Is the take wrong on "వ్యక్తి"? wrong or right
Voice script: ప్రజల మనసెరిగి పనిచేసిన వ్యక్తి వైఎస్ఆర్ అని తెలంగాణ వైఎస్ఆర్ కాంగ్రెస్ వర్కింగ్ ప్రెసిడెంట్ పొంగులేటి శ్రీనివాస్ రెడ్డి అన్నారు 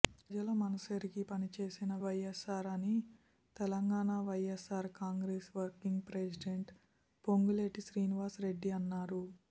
wrong